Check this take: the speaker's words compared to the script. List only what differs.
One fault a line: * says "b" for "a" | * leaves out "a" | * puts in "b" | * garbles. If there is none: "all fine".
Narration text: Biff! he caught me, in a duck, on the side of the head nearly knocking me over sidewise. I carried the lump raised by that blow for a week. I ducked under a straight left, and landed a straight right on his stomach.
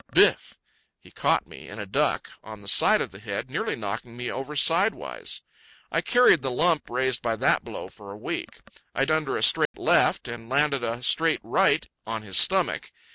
* leaves out "ducked"